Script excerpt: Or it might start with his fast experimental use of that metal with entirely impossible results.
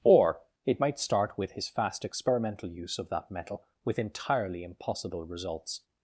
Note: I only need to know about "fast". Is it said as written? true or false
true